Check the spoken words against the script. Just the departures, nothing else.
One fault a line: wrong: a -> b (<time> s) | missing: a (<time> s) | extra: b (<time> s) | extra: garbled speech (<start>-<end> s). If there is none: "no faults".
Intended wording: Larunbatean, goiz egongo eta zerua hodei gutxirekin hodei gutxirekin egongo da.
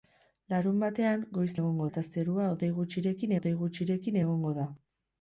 no faults